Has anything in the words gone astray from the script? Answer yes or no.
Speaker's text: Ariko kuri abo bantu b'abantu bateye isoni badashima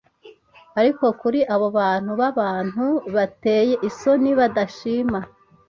no